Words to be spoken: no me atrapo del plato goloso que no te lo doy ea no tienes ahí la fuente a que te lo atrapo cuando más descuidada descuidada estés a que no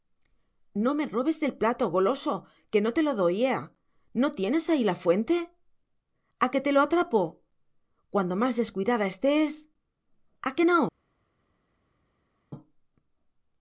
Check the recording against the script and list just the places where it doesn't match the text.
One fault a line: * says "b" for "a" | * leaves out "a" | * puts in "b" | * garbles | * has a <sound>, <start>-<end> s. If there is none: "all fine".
* says "robes" for "atrapo"
* leaves out "descuidada"